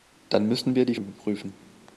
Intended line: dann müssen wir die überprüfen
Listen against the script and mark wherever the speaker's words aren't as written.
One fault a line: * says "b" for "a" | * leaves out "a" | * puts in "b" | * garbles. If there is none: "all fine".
all fine